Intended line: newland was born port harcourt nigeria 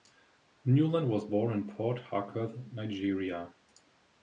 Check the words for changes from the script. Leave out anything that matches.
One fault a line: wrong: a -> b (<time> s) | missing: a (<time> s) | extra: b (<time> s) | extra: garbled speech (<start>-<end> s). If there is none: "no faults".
extra: in (1.5 s)